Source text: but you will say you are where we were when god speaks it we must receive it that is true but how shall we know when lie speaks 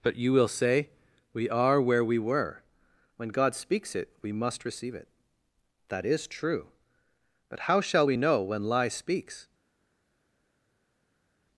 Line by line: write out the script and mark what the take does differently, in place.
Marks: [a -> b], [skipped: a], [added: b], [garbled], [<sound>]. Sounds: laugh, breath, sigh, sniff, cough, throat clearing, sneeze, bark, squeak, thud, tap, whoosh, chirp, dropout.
but you will say [you -> we] are where we were when god speaks it we must receive it that is true but how shall we know when lie speaks